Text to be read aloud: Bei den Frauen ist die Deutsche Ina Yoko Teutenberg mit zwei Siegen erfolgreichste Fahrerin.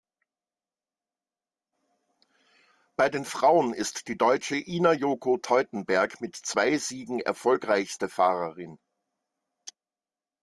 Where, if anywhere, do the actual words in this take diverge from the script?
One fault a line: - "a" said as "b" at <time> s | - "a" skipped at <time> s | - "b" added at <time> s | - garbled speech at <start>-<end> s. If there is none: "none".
none